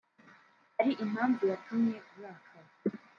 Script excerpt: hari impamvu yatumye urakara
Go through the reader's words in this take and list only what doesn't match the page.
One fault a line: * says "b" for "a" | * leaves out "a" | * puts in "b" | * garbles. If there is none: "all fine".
all fine